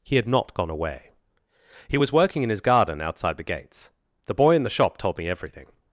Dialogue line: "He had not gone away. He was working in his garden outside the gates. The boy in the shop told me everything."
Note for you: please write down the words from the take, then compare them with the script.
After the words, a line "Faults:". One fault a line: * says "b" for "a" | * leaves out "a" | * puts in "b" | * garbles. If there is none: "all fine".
"He had not gone away. He was working in his garden outside the gates. The boy in the shop told me everything."
Faults:
all fine